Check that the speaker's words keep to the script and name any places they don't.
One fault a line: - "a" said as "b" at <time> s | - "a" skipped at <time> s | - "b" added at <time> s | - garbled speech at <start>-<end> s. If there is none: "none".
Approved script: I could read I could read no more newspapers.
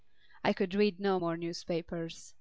- "I could read" skipped at 1.0 s